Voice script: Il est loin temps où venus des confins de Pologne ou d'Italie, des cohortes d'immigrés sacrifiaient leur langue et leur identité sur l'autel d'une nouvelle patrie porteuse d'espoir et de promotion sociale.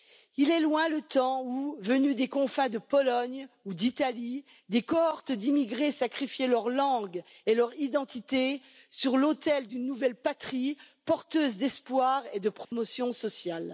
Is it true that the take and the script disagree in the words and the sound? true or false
true